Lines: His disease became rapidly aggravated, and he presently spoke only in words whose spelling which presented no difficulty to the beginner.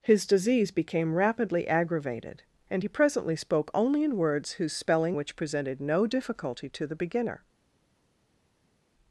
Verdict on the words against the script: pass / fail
pass